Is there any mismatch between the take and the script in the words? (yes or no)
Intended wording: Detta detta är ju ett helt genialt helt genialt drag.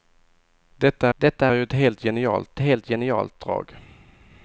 no